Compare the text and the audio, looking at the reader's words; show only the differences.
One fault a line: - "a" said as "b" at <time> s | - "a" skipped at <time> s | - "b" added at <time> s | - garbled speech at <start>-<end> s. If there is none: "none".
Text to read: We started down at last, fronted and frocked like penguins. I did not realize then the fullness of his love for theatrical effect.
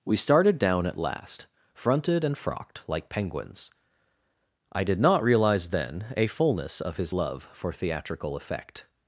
- "the" said as "a" at 6.2 s